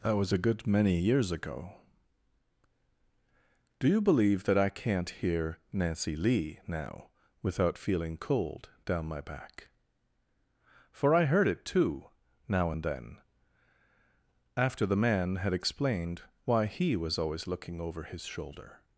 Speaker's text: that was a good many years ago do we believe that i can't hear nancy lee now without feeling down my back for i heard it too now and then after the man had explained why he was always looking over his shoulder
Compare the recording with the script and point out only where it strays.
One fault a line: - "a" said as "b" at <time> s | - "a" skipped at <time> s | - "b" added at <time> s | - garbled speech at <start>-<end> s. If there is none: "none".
- "we" said as "you" at 3.9 s
- "cold" added at 8.2 s